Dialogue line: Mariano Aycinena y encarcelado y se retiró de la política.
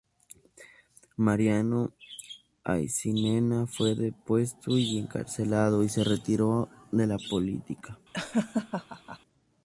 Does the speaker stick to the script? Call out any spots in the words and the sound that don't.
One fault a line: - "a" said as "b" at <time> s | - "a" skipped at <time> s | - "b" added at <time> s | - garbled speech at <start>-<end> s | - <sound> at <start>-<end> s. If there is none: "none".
- "fue depuesto" added at 3.7 s
- laugh at 8.1-9.2 s